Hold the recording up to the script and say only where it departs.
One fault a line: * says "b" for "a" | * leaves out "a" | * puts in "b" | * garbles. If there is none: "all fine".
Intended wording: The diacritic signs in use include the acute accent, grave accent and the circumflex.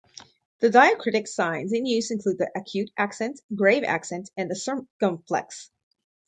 all fine